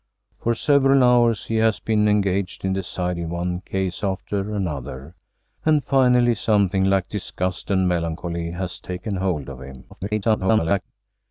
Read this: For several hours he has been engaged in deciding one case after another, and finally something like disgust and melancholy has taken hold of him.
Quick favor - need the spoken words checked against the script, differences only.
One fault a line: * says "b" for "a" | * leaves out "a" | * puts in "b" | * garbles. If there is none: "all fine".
* garbles